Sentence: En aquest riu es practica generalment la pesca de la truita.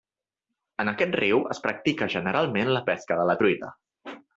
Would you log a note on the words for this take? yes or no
no